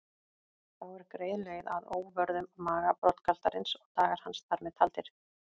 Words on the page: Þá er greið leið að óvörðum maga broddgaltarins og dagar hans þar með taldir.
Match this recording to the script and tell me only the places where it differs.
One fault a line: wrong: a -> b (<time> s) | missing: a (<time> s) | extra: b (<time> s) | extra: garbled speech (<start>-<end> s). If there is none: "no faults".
no faults